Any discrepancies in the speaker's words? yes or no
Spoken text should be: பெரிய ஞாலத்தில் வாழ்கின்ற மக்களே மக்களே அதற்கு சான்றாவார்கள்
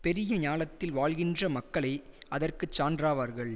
yes